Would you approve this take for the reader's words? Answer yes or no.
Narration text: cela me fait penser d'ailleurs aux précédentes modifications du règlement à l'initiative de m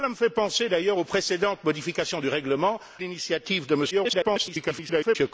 no